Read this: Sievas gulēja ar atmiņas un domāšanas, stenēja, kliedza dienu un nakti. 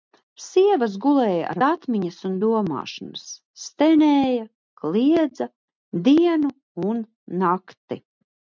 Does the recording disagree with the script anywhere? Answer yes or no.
no